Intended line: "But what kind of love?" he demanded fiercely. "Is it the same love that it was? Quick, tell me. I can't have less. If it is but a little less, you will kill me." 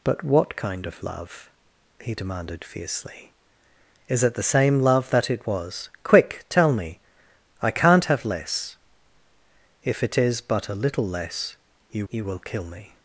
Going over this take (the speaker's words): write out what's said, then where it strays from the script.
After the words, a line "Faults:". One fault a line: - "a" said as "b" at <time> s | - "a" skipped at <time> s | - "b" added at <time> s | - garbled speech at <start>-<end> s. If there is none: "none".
"But what kind of love?" he demanded fiercely. "Is it the same love that it was? Quick, tell me. I can't have less. If it is but a little less, you you will kill me."
Faults:
- "you" added at 12.1 s